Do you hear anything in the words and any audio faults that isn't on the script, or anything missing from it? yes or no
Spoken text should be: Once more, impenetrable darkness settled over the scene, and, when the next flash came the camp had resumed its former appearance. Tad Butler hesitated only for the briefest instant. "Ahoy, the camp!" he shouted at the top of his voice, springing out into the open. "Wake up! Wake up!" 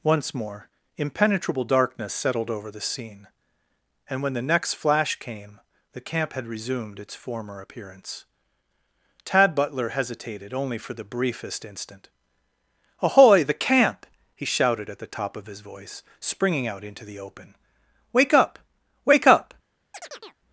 yes